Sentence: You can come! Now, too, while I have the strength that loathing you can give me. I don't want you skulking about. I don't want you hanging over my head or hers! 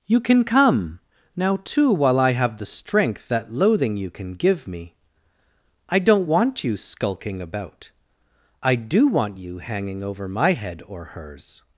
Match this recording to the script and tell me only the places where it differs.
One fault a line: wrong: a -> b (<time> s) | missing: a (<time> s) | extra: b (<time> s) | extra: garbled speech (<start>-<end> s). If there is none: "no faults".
wrong: don't -> do (8.8 s)